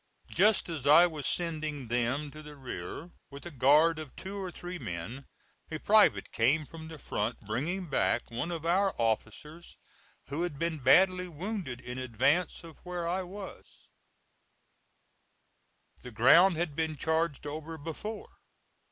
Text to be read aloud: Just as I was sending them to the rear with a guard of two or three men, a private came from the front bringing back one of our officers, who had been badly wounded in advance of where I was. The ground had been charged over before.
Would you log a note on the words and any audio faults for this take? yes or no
no